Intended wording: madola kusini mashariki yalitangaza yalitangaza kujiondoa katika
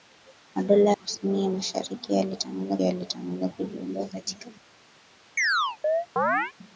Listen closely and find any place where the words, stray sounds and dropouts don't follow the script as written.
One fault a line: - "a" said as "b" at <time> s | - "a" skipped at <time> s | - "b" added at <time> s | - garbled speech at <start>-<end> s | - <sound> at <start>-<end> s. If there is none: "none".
- chirp at 5.4-6.5 s